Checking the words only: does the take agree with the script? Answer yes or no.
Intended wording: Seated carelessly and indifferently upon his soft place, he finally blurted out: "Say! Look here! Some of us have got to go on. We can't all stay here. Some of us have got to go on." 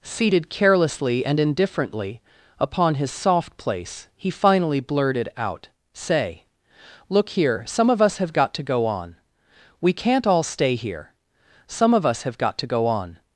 yes